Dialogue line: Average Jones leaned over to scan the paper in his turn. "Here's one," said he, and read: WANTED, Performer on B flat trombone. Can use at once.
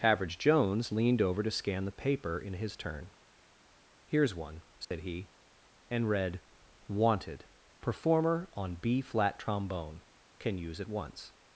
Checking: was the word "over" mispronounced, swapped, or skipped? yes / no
no